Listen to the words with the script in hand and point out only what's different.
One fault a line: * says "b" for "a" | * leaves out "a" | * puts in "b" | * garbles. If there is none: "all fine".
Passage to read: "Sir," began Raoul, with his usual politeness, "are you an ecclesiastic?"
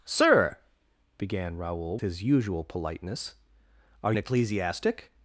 * leaves out "with"
* leaves out "you"